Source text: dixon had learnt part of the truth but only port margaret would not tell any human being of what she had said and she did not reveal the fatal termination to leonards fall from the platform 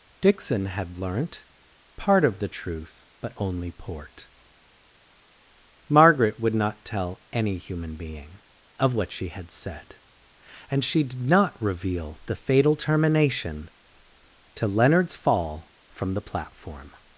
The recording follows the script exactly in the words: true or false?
true